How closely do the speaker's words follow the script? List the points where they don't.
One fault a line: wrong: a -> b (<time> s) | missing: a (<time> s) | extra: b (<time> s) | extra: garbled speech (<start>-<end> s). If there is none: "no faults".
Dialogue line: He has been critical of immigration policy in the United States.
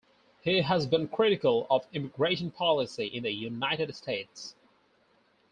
no faults